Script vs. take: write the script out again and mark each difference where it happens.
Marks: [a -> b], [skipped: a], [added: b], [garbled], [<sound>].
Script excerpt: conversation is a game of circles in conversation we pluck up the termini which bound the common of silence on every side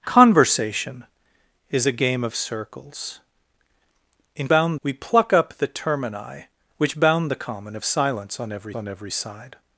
conversation is a game of circles in [conversation -> bound] we pluck up the termini which bound the common of silence on every [added: on every] side